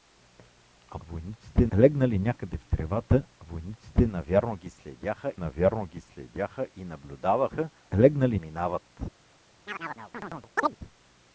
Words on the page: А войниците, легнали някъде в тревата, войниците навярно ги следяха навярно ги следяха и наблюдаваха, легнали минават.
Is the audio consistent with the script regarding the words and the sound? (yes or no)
no